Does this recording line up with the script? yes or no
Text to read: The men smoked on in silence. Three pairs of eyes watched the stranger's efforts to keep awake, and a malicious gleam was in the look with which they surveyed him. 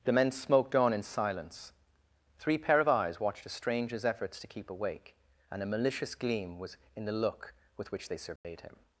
no